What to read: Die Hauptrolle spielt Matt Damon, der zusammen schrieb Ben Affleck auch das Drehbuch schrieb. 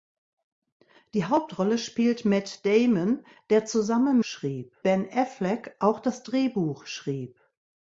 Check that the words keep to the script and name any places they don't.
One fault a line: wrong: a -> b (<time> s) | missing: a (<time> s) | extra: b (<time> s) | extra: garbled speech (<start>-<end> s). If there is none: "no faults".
no faults